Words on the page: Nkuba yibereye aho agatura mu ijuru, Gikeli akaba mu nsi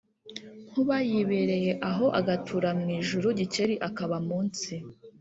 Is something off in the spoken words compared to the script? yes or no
no